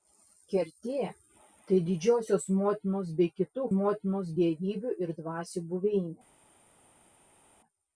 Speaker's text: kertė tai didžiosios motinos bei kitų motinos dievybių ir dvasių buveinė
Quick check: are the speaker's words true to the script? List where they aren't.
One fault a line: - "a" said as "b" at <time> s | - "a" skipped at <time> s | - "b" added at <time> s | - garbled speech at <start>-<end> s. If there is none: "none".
none